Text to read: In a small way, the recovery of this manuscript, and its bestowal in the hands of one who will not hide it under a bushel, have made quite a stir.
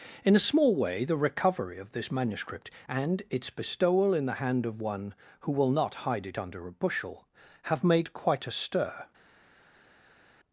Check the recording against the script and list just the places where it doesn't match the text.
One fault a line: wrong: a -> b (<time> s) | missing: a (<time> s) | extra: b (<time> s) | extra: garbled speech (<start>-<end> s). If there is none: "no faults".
wrong: hands -> hand (4.3 s)